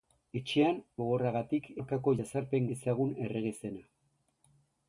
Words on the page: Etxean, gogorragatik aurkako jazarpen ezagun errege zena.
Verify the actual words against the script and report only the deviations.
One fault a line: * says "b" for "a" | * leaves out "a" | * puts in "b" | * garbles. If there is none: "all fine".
all fine